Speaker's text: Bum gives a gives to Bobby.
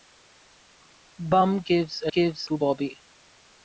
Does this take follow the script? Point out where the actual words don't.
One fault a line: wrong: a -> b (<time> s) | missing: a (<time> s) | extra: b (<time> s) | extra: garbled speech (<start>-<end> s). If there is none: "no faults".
no faults